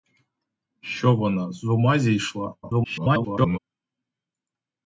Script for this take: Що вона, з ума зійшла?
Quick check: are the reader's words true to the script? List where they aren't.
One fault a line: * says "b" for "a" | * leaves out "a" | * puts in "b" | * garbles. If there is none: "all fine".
* garbles